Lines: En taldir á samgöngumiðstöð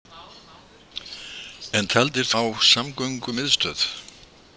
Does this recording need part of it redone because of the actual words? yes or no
no